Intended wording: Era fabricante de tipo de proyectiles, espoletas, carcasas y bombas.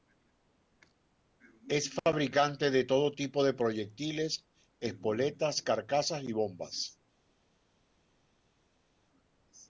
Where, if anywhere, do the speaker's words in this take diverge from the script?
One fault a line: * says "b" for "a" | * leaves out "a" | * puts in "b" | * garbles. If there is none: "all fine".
* says "Es" for "Era"
* puts in "todo"